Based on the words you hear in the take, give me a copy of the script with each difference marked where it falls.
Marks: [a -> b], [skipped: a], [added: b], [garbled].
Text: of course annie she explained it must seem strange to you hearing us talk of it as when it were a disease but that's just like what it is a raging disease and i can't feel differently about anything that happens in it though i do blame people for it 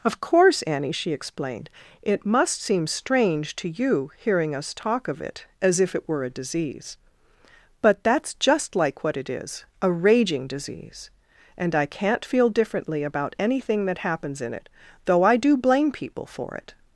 of course annie she explained it must seem strange to you hearing us talk of it as [when -> if] it were a disease but that's just like what it is a raging disease and i can't feel differently about anything that happens in it though i do blame people for it